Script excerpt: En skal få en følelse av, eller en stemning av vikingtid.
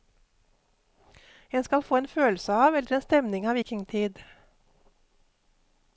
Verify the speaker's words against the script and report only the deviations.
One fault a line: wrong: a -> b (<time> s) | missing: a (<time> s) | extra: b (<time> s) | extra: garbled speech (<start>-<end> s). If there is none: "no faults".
no faults